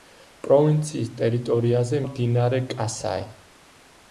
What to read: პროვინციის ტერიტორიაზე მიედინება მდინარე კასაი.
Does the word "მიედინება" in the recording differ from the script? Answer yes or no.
yes